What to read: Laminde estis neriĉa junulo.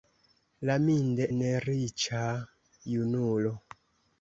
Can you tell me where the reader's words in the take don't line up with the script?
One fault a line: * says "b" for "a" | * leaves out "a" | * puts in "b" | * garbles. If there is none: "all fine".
* leaves out "estis"